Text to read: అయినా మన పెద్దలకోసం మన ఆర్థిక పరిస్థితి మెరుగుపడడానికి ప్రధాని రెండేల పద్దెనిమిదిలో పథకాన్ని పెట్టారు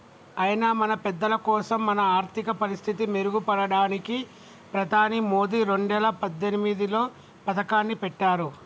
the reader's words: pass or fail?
fail